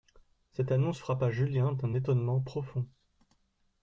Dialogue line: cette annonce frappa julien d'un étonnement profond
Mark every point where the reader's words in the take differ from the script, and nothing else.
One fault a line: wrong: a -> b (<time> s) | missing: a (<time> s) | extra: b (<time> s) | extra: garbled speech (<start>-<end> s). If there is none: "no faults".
no faults